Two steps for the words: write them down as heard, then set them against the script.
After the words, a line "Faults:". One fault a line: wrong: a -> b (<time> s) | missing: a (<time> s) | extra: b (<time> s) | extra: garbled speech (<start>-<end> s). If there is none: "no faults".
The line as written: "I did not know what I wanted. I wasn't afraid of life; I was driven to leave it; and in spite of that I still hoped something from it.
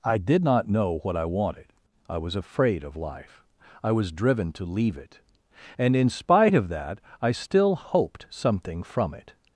"I did not know what I wanted. I was afraid of life; I was driven to leave it; and in spite of that I still hoped something from it.
Faults:
wrong: wasn't -> was (2.2 s)